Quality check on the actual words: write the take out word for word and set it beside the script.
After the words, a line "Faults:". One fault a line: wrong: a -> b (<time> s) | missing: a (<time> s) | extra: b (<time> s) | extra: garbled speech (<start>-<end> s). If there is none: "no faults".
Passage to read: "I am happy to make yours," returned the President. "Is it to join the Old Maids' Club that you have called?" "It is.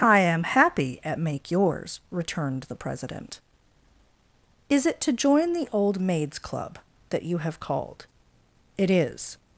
"I am happy at make yours," returned the President. "Is it to join the Old Maids' Club that you have called?" "It is.
Faults:
wrong: to -> at (1.0 s)